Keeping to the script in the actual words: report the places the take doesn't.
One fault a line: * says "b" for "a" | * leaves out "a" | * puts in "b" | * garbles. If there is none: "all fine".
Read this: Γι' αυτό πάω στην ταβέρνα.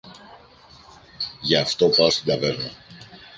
all fine